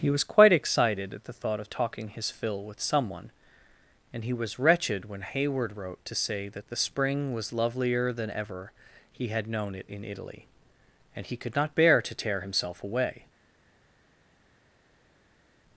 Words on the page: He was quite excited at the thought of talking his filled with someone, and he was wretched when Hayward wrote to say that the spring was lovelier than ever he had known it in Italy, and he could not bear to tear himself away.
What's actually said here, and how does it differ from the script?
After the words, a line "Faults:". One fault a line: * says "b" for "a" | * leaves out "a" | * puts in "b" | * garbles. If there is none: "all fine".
He was quite excited at the thought of talking his fill with someone, and he was wretched when Hayward wrote to say that the spring was lovelier than ever he had known it in Italy, and he could not bear to tear himself away.
Faults:
* says "fill" for "filled"